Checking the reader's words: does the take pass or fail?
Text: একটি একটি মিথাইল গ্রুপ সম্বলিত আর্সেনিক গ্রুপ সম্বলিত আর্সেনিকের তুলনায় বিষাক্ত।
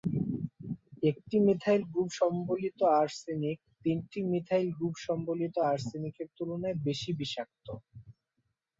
fail